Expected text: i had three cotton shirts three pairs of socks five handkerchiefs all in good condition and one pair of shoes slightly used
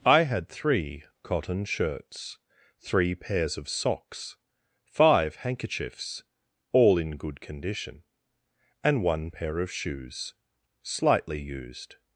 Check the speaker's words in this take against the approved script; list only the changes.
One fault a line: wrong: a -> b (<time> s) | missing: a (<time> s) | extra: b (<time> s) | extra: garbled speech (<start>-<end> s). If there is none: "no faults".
no faults